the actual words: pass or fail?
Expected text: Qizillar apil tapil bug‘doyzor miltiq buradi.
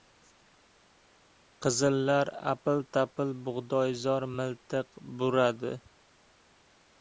pass